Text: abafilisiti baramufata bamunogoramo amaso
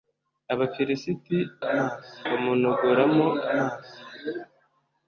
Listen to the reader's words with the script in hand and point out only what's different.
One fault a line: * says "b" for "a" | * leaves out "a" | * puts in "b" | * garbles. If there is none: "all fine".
* says "amaso" for "baramufata"